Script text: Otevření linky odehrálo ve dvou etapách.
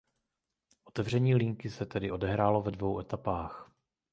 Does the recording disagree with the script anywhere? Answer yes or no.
yes